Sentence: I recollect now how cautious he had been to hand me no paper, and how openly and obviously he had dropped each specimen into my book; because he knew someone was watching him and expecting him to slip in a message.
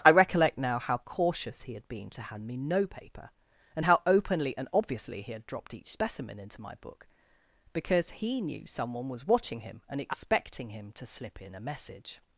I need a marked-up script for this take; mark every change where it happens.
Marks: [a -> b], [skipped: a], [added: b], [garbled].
I recollect now how cautious he had been to hand me no paper, and how openly and obviously he had dropped each specimen into my book; because he knew someone was watching him and expecting him to slip in a message.